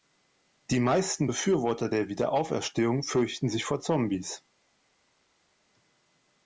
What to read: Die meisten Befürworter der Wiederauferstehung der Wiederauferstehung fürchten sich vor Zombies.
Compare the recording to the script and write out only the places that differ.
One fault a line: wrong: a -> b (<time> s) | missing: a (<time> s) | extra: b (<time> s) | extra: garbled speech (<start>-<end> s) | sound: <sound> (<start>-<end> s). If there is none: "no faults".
missing: der Wiederauferstehung (3.0 s)